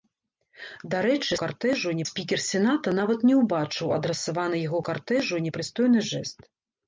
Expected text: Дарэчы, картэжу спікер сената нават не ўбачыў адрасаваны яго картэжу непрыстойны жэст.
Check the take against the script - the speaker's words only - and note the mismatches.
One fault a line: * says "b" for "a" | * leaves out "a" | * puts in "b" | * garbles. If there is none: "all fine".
all fine